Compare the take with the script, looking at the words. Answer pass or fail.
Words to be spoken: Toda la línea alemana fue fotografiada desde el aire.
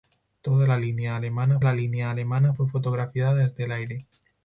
fail